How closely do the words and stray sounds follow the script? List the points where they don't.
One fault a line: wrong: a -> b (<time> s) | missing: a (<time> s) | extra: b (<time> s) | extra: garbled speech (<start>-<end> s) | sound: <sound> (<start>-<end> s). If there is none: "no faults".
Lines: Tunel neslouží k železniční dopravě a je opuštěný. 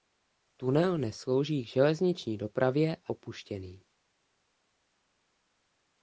missing: je (3.1 s)